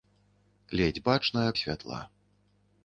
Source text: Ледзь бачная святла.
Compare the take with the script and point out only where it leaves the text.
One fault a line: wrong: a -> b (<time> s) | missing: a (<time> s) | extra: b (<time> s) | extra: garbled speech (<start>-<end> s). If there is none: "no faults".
no faults